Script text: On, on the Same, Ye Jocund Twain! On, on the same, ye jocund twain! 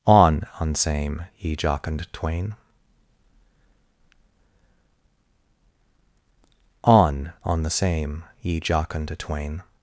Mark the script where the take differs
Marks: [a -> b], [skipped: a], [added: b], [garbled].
On, on [skipped: the] Same, Ye Jocund Twain! On, on the same, ye jocund twain!